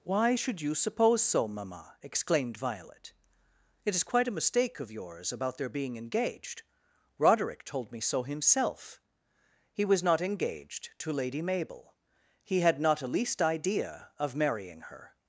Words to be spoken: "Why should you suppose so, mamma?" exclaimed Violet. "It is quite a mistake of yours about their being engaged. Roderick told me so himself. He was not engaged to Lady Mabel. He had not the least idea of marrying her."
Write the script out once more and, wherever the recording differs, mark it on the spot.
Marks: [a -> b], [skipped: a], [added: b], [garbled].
"Why should you suppose so, mamma?" exclaimed Violet. "It is quite a mistake of yours about their being engaged. Roderick told me so himself. He was not engaged to Lady Mabel. He had not [the -> a] least idea of marrying her."